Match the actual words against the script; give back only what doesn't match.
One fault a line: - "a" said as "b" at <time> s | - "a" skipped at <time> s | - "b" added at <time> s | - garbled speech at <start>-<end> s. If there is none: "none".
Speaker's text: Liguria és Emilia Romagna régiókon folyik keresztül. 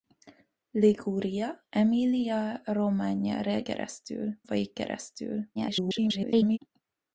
- "és" skipped at 1.7 s
- "régiókon" said as "keresztül" at 3.6 s
- garbled speech at 5.5-6.6 s